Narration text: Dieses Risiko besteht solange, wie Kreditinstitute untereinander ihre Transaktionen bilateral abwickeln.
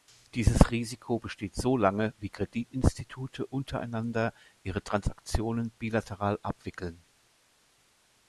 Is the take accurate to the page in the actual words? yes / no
yes